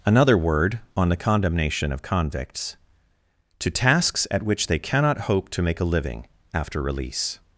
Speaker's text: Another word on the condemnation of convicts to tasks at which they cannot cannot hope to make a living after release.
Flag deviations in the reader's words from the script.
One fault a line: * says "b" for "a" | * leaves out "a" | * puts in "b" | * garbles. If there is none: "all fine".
* leaves out "cannot"